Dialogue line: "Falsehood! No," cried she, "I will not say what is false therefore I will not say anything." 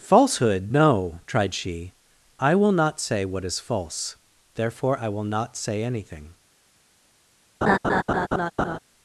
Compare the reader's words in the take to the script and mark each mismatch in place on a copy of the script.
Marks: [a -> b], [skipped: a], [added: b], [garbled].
"Falsehood! No," [cried -> tried] she, "I will not say what is false therefore I will not say anything."